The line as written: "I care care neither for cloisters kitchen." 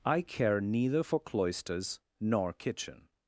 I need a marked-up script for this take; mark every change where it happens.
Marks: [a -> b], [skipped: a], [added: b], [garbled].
"I care [skipped: care] neither for cloisters [added: nor] kitchen."